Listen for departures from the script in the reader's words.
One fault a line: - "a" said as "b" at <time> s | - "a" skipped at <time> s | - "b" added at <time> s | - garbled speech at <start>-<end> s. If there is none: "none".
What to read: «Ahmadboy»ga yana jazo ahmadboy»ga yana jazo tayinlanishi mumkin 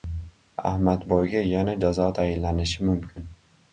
- "ahmadboy»ga yana jazo" skipped at 2.1 s